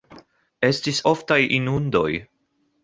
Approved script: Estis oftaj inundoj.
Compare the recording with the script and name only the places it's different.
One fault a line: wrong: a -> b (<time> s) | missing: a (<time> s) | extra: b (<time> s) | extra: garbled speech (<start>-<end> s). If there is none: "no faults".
no faults